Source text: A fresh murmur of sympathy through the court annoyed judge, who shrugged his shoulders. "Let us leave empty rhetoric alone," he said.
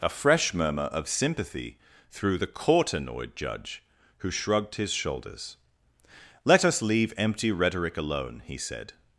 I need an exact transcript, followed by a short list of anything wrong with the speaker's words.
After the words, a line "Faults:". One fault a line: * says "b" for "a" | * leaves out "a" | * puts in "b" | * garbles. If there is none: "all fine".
A fresh murmur of sympathy through the court annoyed judge, who shrugged his shoulders. "Let us leave empty rhetoric alone," he said.
Faults:
all fine